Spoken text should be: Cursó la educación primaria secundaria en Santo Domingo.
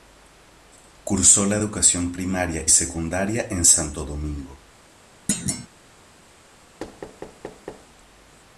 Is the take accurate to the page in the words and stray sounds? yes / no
no